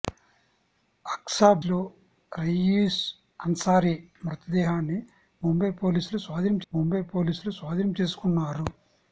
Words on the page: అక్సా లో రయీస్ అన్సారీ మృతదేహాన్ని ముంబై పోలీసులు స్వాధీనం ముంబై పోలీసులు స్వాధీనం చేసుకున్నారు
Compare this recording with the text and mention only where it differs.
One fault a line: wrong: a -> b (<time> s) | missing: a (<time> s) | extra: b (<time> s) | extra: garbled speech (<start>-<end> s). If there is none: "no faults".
no faults